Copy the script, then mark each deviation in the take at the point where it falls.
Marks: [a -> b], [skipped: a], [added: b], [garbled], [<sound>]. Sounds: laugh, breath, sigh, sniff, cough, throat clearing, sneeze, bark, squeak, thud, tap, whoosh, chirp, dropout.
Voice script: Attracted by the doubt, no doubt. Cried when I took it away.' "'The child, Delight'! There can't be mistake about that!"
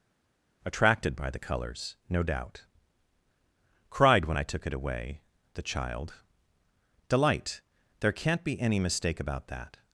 Attracted by the [doubt, -> colors] no doubt. Cried when I took it away.' "'The child, Delight'! There can't be [added: any] mistake about that!"